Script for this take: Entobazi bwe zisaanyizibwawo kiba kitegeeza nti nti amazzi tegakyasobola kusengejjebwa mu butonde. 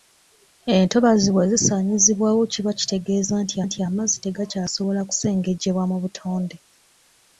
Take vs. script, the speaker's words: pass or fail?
pass